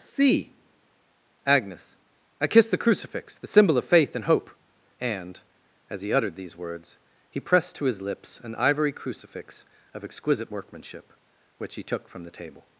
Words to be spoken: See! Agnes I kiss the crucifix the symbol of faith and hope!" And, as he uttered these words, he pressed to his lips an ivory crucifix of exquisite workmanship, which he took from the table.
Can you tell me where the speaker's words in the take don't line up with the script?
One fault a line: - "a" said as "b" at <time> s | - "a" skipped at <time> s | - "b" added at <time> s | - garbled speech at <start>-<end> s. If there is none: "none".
none